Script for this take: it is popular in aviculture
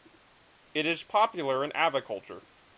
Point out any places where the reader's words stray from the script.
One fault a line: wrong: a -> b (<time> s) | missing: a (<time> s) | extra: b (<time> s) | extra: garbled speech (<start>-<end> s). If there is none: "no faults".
no faults